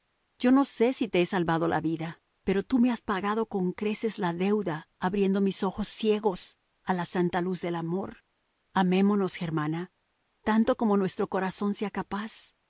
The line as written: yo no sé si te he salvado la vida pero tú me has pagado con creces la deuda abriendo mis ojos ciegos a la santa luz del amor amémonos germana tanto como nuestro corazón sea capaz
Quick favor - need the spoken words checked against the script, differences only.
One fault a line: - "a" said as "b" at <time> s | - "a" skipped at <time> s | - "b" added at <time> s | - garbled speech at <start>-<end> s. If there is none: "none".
none